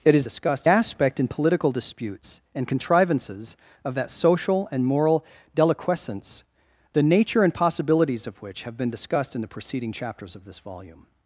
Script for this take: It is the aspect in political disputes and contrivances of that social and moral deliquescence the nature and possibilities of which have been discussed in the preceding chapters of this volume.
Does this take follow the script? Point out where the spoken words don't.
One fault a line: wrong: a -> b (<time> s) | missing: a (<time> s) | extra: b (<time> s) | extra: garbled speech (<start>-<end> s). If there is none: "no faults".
wrong: the -> discussed (0.2 s)